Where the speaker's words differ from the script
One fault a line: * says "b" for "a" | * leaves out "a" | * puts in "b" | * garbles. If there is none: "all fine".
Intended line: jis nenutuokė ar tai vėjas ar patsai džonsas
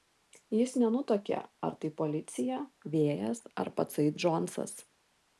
* puts in "policija"